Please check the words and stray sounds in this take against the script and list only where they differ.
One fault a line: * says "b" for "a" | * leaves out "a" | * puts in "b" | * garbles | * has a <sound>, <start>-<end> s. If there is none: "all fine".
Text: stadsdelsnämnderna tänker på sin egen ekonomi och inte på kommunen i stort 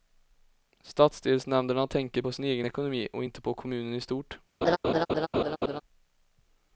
* has a laugh, 4.6-5.8 s